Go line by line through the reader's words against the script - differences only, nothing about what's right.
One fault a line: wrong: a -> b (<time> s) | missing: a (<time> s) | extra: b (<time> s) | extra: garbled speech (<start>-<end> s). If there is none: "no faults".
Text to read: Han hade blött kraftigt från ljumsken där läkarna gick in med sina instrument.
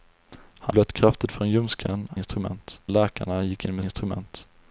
missing: hade (0.8 s)
wrong: där -> instrument (2.1 s)
missing: sina (3.9 s)